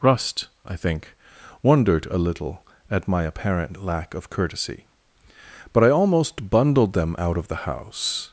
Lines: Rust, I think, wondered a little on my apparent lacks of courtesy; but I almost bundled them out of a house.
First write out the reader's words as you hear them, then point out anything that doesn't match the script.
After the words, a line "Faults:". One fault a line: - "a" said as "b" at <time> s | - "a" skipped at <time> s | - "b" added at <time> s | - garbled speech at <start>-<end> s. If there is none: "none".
Rust, I think, wondered a little at my apparent lack of courtesy; but I almost bundled them out of the house.
Faults:
- "on" said as "at" at 2.9 s
- "lacks" said as "lack" at 3.8 s
- "a" said as "the" at 7.5 s